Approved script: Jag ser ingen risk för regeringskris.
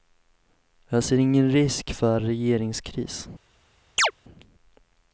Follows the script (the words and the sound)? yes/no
no